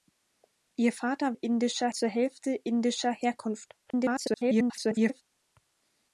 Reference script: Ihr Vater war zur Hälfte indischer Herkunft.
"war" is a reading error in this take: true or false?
true